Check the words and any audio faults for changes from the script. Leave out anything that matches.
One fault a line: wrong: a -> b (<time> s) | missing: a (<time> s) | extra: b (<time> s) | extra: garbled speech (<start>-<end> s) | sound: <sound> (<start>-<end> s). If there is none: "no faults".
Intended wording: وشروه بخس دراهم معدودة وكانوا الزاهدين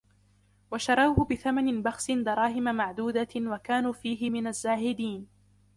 extra: بثمن (1.3 s)
extra: فيه من (3.9 s)